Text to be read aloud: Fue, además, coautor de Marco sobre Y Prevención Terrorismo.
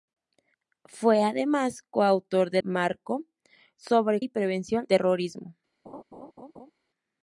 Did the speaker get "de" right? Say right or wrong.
right